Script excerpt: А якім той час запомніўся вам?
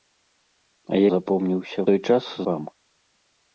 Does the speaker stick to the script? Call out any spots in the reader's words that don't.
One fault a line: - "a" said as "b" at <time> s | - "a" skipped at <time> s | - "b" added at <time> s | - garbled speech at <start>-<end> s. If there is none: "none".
- "якім" said as "запомніўся" at 1.1 s
- "запомніўся" skipped at 2.2 s